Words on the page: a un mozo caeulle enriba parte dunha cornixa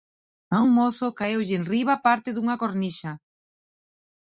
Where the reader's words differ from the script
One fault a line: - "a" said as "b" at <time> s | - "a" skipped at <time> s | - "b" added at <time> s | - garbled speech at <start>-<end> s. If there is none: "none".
none